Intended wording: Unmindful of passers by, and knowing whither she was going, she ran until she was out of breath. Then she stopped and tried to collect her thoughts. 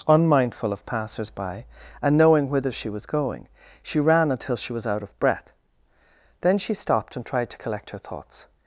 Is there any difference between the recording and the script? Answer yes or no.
no